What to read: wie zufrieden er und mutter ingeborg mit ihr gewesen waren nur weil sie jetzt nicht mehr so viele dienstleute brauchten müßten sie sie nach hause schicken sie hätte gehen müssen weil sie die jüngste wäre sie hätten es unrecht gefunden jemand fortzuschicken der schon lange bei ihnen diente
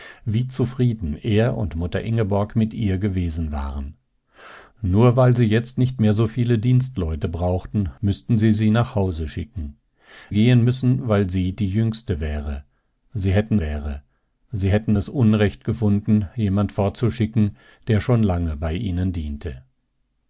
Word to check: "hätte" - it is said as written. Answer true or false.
false